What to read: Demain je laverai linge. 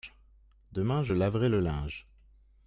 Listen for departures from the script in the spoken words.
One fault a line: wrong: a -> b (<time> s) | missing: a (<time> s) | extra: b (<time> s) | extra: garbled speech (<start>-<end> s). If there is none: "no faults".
extra: le (1.5 s)